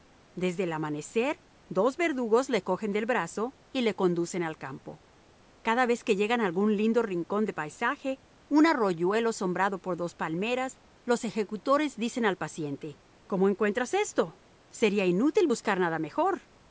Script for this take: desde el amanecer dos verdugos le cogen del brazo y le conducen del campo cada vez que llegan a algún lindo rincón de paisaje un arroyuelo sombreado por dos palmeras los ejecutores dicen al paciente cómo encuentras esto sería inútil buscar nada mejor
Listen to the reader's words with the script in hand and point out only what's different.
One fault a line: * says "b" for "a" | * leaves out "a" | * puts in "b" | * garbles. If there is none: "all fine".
* says "al" for "del"